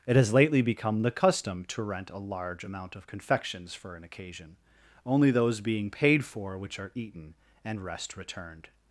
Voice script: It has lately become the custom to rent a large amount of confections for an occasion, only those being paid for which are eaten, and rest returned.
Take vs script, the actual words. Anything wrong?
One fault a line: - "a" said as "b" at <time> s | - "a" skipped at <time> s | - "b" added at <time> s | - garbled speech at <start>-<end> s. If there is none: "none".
none